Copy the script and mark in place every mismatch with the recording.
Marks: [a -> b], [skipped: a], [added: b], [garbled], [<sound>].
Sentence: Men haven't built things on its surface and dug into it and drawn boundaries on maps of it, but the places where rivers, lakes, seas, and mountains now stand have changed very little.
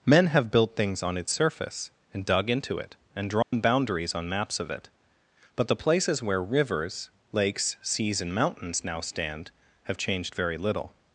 Men [haven't -> have] built things on its surface and dug into it and drawn [dropout] boundaries on maps of it, but the places where rivers, lakes, seas, and mountains now stand have changed very little.